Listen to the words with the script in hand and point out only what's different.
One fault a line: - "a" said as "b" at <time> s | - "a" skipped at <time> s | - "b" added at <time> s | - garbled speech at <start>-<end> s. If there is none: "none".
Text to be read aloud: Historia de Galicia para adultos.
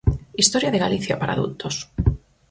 none